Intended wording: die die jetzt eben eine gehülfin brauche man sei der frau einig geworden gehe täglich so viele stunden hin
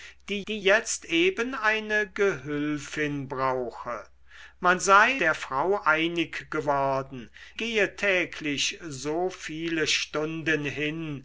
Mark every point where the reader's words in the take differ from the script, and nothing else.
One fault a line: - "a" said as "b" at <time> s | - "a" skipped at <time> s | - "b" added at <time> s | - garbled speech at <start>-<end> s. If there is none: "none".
none